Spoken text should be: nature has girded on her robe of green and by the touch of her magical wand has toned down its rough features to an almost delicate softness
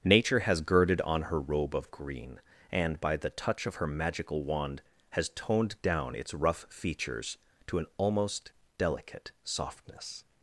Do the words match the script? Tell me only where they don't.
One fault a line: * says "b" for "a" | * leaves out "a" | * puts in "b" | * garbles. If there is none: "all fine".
all fine